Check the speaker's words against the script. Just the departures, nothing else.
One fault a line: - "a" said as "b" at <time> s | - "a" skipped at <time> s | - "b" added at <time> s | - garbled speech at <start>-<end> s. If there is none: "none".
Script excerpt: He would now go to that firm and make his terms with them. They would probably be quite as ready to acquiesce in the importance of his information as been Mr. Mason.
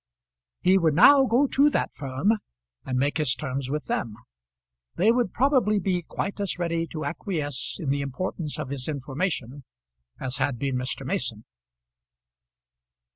- "had" added at 10.4 s